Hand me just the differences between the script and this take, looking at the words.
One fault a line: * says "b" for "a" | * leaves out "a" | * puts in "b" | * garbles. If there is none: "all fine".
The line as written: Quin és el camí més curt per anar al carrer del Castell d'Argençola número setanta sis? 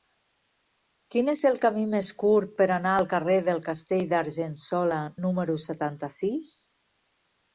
all fine